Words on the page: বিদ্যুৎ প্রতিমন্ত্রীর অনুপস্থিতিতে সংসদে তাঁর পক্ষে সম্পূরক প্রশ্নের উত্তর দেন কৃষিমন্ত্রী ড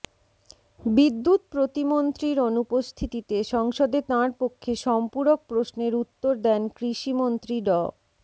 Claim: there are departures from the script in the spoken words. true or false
false